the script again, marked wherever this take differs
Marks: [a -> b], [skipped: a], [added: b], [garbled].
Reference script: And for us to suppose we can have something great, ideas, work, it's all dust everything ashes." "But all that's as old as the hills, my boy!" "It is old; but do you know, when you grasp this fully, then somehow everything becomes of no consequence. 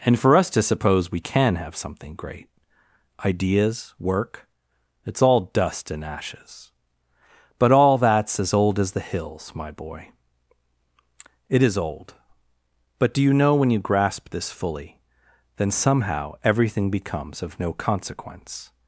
And for us to suppose we can have something great, ideas, work, it's all dust [everything -> and] ashes." "But all that's as old as the hills, my boy!" "It is old; but do you know, when you grasp this fully, then somehow everything becomes of no consequence.